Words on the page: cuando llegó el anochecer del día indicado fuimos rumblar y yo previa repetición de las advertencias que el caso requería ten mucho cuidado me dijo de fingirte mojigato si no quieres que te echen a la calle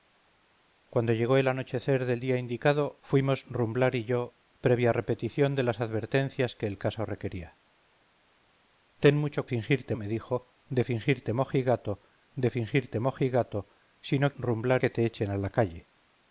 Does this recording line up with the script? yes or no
no